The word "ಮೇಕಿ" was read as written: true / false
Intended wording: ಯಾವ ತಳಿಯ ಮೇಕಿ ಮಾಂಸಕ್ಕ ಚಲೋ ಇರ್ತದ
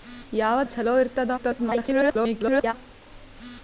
false